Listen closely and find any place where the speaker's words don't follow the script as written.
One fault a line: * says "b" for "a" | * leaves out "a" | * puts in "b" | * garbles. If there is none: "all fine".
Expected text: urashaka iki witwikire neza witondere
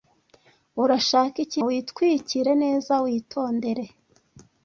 all fine